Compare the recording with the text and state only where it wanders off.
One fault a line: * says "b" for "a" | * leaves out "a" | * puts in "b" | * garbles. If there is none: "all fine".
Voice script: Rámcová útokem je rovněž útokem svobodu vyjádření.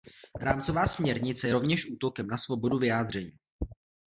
* says "směrnice" for "útokem"
* puts in "na"